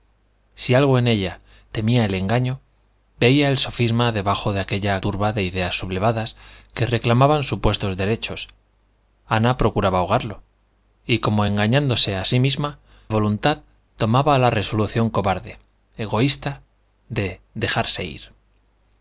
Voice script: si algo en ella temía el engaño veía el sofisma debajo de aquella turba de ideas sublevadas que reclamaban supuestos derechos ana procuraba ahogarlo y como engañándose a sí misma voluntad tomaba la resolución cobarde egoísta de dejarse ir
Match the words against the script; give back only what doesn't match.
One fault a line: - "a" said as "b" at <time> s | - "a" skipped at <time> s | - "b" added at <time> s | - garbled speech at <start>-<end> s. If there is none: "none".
none